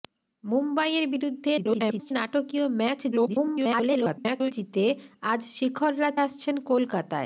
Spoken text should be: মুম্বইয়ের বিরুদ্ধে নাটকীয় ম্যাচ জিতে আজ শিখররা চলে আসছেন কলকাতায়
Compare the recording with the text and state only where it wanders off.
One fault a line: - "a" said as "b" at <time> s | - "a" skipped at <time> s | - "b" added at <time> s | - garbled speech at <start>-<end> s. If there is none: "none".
- garbled speech at 1.6-2.1 s
- garbled speech at 3.1-4.5 s
- "চলে" skipped at 6.1 s